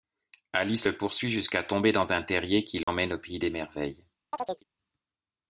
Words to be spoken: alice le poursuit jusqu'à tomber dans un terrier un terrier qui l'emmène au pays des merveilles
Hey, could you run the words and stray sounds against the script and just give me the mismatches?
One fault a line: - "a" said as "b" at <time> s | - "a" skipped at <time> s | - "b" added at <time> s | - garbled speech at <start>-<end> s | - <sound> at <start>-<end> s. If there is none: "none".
- "un terrier" skipped at 2.6 s
- dropout at 2.8-2.9 s
- chirp at 4.3-4.6 s